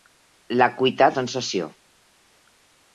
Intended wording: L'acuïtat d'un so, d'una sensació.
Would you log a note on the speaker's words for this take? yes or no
yes